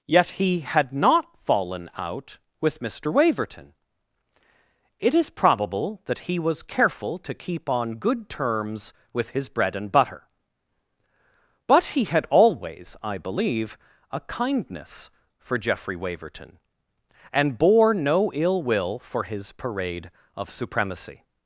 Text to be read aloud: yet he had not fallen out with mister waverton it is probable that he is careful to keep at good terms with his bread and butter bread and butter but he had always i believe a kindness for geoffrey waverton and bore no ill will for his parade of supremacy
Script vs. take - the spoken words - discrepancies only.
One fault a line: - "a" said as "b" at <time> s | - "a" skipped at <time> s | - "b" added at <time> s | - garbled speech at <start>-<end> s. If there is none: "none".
- "is" said as "was" at 6.4 s
- "at" said as "on" at 7.7 s
- "bread and butter" skipped at 10.3 s